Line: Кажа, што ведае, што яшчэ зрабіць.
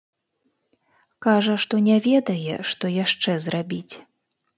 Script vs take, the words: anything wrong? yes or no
yes